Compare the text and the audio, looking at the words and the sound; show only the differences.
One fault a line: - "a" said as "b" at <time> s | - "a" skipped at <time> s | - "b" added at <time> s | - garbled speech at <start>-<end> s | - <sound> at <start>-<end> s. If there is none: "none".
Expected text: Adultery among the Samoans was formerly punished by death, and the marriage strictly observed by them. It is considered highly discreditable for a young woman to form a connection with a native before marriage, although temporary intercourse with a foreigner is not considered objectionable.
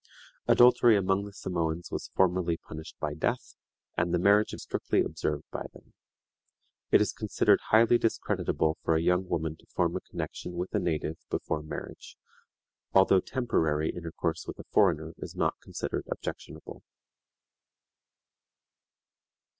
none